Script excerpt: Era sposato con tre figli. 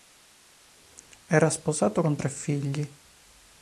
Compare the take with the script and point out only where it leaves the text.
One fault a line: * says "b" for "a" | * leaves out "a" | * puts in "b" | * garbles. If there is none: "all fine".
all fine